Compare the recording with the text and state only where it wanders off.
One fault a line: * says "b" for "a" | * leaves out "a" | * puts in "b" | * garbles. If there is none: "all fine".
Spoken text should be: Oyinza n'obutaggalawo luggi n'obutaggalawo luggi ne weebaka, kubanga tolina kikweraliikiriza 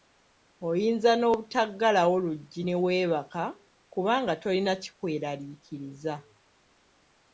* leaves out "n'obutaggalawo luggi"